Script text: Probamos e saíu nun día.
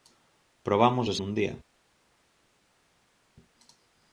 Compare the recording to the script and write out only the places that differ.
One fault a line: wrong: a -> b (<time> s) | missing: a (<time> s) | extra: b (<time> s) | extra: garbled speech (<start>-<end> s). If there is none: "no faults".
missing: saíu (1.1 s)